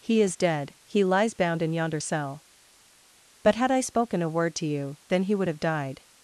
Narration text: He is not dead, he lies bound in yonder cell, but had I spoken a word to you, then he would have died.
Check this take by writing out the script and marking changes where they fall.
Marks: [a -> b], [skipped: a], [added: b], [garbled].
He is [skipped: not] dead, he lies bound in yonder cell, but had I spoken a word to you, then he would have died.